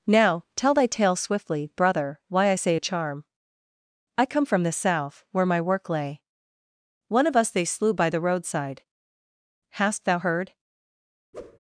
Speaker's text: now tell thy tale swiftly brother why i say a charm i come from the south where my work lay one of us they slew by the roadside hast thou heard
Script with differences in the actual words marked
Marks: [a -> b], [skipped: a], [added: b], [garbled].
now tell thy tale swiftly brother why i say a charm i come from the south where my work lay one of us they slew by the roadside hast thou heard